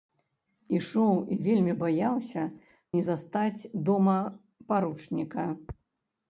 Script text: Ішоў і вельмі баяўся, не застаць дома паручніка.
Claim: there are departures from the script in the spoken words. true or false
false